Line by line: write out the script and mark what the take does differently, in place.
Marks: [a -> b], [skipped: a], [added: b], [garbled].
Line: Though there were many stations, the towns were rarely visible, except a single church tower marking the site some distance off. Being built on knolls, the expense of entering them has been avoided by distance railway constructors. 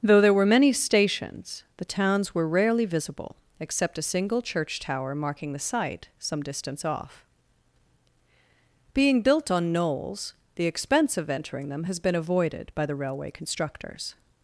Though there were many stations, the towns were rarely visible, except a single church tower marking the site some distance off. Being built on knolls, the expense of entering them has been avoided by [distance -> the] railway constructors.